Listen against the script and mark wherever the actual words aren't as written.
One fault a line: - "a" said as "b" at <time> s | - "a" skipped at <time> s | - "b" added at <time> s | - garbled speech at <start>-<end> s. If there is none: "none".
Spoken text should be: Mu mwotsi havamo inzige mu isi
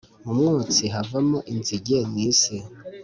none